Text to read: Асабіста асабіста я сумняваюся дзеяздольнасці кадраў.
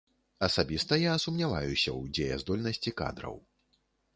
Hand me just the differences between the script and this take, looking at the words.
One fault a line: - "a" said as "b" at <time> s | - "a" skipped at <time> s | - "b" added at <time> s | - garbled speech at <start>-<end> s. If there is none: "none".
- "асабіста" skipped at 1.0 s
- "ў" added at 1.9 s